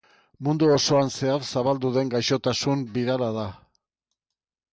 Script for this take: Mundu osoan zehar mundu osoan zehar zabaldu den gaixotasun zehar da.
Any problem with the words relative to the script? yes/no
yes